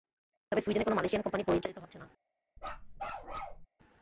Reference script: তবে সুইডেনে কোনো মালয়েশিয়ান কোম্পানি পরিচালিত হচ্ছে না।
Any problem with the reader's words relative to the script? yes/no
no